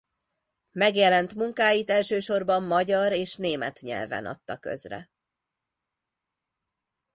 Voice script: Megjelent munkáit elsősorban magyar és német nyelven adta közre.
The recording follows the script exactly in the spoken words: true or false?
true